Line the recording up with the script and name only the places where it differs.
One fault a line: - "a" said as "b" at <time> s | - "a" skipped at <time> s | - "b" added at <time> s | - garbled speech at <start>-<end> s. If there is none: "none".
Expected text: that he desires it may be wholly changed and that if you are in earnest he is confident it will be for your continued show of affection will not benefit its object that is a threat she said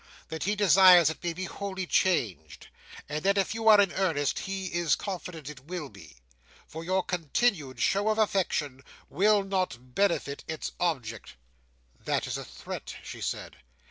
none